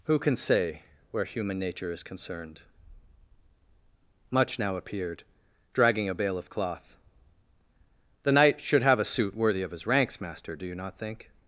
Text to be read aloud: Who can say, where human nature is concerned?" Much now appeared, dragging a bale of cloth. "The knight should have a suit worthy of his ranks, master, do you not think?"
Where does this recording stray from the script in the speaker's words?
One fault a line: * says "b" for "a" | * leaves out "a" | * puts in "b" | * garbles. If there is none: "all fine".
all fine